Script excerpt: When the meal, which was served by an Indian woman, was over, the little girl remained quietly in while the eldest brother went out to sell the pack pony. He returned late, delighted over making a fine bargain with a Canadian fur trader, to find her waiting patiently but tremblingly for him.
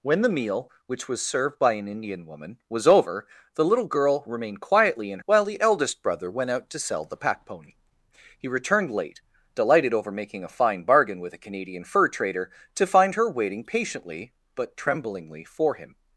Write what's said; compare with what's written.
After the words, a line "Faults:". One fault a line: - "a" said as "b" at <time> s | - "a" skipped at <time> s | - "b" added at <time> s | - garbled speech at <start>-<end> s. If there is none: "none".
When the meal, which was served by an Indian woman, was over, the little girl remained quietly in while the eldest brother went out to sell the pack pony. He returned late, delighted over making a fine bargain with a Canadian fur trader, to find her waiting patiently but tremblingly for him.
Faults:
none